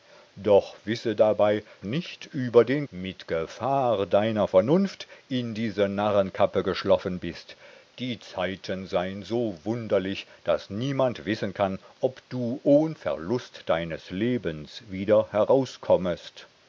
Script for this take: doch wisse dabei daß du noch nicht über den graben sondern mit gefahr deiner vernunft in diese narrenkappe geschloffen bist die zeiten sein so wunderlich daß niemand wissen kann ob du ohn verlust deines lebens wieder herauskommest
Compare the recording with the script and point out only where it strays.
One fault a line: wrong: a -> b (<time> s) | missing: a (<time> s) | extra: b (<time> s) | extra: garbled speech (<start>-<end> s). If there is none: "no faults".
missing: daß du noch (1.6 s)
missing: graben sondern (2.8 s)